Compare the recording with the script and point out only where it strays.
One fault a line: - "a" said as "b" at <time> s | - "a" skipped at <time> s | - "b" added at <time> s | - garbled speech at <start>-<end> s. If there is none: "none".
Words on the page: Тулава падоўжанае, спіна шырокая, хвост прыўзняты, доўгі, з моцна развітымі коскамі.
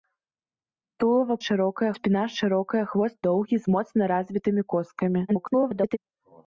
- "падоўжанае" said as "шырокая" at 1.4 s
- "прыўзняты" skipped at 3.2 s
- garbled speech at 5.3-6.0 s